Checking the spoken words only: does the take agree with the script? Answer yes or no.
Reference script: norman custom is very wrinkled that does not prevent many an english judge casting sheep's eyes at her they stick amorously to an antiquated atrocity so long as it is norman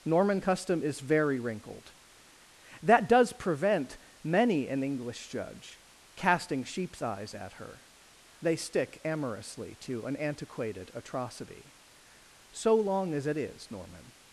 no